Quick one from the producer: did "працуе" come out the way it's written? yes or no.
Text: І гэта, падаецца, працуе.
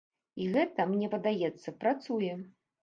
yes